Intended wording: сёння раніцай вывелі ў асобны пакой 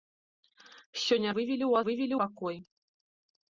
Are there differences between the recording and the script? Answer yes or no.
yes